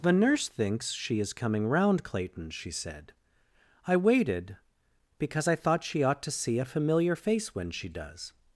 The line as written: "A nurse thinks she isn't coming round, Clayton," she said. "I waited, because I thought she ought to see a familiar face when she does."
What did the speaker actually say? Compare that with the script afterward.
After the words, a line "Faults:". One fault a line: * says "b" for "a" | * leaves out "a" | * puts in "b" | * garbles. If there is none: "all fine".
"The nurse thinks she is coming round, Clayton," she said. "I waited, because I thought she ought to see a familiar face when she does."
Faults:
* says "The" for "A"
* says "is" for "isn't"